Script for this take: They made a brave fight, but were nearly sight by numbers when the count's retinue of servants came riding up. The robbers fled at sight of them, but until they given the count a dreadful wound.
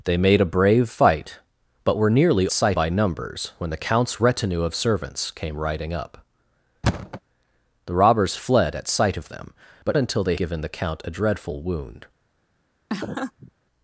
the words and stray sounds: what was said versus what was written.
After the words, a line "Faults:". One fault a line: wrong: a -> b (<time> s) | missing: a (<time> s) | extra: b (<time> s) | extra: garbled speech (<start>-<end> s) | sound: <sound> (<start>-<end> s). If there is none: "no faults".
They made a brave fight, but were nearly sight by numbers when the count's retinue of servants came riding up. The robbers fled at sight of them, but until they given the count a dreadful wound.
Faults:
sound: thud (6.8-7.2 s)
sound: laugh (12.9-13.5 s)